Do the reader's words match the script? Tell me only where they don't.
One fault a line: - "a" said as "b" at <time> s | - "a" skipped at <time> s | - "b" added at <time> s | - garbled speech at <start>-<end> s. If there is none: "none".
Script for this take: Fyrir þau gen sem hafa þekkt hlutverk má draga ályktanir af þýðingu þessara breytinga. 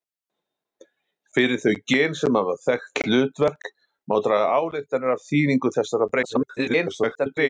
- garbled speech at 6.2-7.5 s